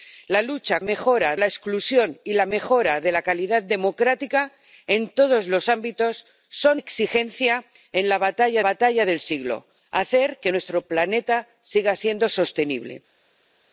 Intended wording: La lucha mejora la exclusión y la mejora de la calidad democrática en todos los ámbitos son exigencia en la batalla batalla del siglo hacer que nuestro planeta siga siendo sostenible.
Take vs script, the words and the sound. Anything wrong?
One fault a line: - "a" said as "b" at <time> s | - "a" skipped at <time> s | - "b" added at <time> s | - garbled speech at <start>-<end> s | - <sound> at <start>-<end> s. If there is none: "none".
none